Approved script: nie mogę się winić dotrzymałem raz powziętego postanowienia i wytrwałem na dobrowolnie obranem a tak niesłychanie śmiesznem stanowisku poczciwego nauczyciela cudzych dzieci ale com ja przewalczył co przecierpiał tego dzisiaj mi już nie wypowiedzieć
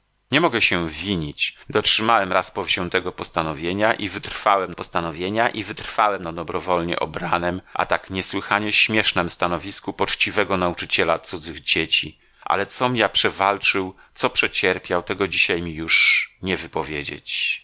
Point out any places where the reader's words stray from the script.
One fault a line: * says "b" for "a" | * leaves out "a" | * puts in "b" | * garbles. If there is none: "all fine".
* puts in "postanowienia i wytrwałem"